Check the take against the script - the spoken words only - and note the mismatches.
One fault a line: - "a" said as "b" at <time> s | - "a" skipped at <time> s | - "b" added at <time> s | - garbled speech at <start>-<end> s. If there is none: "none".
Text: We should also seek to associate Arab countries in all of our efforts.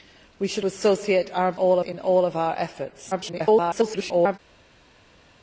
- "also seek to" skipped at 0.7 s
- "countries" said as "all" at 1.5 s
- garbled speech at 3.1-4.4 s